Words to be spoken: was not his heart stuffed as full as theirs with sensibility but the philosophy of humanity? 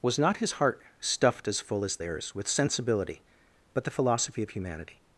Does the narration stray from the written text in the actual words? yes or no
no